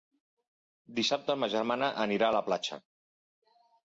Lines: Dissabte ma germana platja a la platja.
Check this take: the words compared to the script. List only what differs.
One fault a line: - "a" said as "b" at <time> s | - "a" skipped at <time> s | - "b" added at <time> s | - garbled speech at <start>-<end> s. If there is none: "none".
- "platja" said as "anirà" at 2.0 s